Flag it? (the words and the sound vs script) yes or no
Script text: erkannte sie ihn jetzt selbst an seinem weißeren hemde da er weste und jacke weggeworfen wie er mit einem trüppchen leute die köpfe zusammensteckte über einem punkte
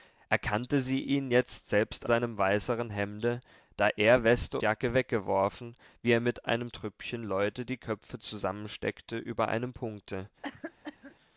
yes